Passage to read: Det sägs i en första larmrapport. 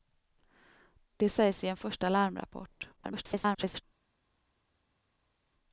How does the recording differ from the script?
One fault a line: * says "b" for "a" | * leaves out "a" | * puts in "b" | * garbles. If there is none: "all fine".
* garbles